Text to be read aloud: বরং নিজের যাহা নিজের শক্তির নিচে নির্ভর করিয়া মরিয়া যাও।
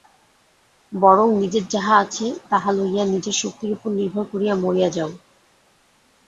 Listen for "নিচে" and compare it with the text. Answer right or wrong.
wrong